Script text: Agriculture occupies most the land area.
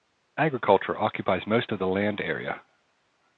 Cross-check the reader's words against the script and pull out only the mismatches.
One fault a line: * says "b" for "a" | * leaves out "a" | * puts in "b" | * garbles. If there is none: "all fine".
* puts in "of"